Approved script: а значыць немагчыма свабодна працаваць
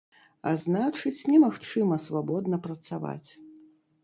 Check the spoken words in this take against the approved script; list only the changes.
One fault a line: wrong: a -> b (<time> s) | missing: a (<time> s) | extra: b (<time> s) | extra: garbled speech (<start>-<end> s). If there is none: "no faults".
no faults